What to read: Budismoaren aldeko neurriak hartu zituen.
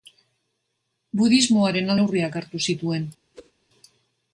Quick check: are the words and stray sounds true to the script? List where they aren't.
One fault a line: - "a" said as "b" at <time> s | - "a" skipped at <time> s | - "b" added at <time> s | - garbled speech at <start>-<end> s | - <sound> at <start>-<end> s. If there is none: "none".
- "aldeko" skipped at 1.9 s
- whoosh at 3.3-3.5 s